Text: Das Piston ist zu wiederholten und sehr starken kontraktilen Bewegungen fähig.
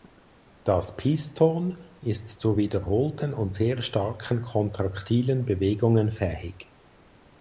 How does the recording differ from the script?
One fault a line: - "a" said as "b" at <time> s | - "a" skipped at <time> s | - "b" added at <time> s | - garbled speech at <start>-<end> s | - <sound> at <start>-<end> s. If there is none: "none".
none